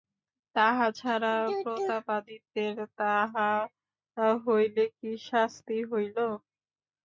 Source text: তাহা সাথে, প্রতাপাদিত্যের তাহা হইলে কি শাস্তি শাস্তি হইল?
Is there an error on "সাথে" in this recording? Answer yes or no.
yes